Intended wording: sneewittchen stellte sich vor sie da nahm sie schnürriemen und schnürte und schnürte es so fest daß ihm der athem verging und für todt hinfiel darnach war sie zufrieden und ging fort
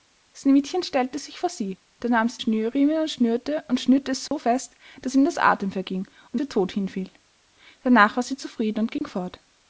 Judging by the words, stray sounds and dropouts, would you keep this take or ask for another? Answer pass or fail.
fail